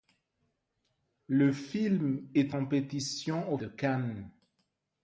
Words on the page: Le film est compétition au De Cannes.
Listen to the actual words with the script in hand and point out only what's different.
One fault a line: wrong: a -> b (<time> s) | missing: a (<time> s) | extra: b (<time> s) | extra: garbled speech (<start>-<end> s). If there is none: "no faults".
no faults